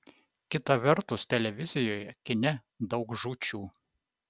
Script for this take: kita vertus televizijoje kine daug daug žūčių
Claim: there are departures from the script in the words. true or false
true